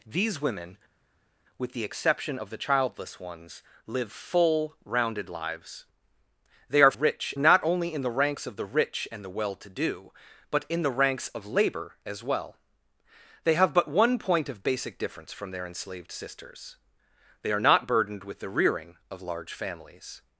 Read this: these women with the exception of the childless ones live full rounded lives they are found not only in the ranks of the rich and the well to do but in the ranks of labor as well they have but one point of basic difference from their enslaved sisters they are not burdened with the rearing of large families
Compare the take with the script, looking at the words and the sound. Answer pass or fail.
fail